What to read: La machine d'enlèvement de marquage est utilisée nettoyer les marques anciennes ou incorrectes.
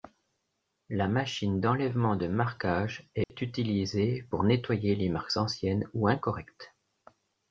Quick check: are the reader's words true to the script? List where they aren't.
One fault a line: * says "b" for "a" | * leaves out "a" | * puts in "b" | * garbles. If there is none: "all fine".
* puts in "pour"